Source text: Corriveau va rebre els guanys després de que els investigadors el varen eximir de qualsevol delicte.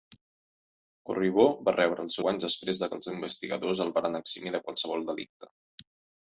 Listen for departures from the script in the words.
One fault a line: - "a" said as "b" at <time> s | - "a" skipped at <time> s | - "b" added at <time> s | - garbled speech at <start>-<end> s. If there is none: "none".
none